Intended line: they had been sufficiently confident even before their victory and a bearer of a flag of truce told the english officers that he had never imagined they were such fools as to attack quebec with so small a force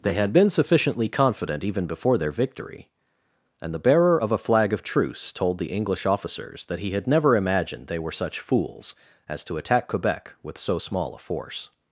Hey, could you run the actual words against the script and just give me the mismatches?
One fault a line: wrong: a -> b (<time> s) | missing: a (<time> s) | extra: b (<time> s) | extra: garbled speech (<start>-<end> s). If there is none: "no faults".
wrong: a -> the (3.7 s)